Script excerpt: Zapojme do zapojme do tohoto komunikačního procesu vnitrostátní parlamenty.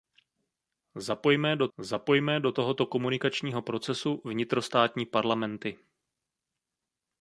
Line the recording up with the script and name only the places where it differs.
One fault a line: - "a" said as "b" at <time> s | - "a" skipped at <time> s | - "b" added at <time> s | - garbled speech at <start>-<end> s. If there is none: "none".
none